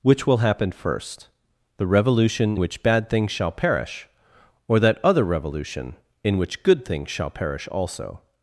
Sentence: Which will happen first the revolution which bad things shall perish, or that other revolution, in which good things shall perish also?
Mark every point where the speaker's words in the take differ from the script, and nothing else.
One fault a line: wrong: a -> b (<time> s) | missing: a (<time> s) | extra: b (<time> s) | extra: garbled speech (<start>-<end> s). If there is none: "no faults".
no faults